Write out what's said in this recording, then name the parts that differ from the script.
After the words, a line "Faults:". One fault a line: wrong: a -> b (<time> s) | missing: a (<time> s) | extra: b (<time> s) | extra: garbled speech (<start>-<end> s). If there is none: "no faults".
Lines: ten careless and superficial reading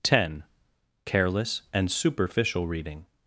ten careless and superficial reading
Faults:
no faults